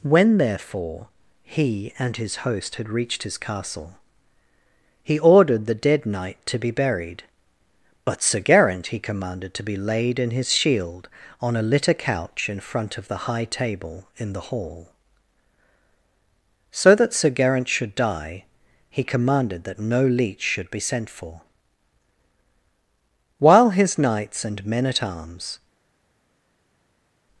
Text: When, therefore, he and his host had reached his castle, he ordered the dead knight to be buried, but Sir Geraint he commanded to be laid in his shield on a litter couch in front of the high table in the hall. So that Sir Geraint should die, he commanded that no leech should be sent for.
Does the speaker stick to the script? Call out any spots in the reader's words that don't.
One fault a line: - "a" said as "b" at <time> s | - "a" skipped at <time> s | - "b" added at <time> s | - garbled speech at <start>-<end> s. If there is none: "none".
- "While his knights and men at arms" added at 23.4 s